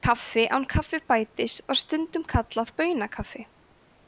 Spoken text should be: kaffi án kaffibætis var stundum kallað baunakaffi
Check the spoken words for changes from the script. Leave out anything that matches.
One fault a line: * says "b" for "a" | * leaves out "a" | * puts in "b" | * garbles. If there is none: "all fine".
all fine